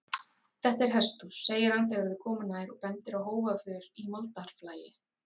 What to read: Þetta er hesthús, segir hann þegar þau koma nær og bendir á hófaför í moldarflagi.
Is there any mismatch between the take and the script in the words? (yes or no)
no